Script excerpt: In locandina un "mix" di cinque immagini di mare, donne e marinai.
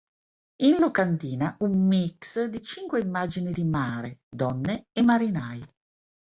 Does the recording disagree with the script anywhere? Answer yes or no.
no